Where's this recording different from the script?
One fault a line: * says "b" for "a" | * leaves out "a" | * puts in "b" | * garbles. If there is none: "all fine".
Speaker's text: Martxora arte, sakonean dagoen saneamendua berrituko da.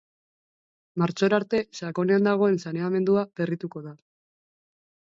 all fine